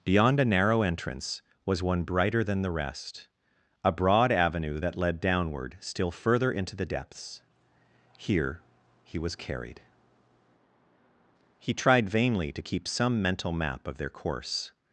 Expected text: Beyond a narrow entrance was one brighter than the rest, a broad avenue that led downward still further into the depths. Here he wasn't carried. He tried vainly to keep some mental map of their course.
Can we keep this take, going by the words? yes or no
no